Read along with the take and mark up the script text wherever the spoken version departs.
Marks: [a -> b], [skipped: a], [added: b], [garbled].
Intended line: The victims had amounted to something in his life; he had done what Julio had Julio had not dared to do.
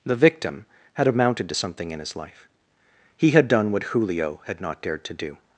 The [victims -> victim] had amounted to something in his life; he had done what Julio had [skipped: Julio had] not dared to do.